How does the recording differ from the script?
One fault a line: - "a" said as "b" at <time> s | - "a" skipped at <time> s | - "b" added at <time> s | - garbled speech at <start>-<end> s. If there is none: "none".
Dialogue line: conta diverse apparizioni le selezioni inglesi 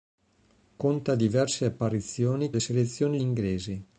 none